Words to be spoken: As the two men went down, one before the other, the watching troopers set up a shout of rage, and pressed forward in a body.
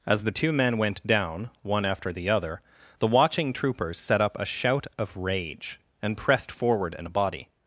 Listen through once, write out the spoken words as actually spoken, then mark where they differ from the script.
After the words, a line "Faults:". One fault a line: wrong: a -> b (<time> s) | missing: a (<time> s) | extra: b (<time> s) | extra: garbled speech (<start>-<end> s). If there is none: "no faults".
As the two men went down, one after the other, the watching troopers set up a shout of rage, and pressed forward in a body.
Faults:
wrong: before -> after (1.9 s)